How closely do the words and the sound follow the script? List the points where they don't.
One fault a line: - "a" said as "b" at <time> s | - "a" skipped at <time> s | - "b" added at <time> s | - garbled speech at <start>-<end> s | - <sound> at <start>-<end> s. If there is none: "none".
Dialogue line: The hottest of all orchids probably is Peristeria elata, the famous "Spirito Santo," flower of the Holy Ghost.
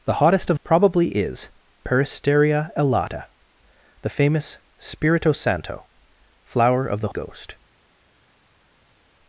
- "all orchids" skipped at 0.6 s
- "Holy" skipped at 7.1 s